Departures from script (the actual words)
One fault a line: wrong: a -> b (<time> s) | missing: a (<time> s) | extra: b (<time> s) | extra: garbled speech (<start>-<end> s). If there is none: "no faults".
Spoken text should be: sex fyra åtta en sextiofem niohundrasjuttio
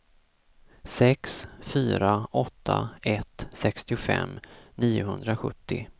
wrong: en -> ett (3.0 s)